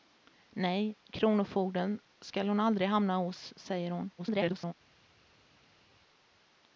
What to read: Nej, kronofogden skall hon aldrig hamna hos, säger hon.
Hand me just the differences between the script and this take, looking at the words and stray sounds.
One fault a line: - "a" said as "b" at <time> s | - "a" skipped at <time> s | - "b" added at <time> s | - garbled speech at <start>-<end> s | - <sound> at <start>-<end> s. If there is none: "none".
- garbled speech at 4.2-4.7 s